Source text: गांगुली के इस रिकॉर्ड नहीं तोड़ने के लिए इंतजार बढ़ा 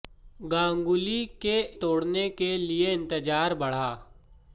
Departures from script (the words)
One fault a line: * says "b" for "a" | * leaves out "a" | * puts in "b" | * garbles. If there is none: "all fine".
* leaves out "इस रिकॉर्ड नहीं"